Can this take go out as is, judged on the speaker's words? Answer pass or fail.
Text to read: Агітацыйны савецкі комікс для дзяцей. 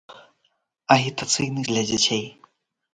fail